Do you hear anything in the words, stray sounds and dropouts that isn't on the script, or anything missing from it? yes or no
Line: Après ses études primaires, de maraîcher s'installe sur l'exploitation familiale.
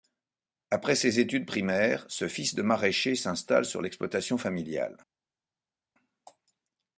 yes